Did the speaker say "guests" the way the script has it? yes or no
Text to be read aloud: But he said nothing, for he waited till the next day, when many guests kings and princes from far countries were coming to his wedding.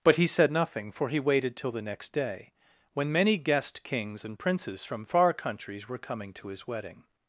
no